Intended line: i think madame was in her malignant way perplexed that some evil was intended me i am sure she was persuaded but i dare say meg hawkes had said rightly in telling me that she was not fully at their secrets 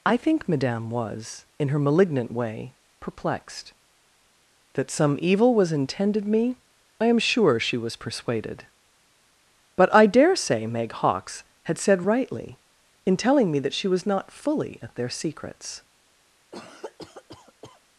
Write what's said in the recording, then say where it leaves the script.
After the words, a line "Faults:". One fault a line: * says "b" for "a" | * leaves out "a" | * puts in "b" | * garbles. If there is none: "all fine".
i think madame was in her malignant way perplexed that some evil was intended me i am sure she was persuaded but i dare say meg hawkes had said rightly in telling me that she was not fully at their secrets
Faults:
all fine